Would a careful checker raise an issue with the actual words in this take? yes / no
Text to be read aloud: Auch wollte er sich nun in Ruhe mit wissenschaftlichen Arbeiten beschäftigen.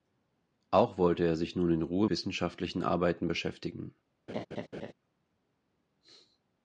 yes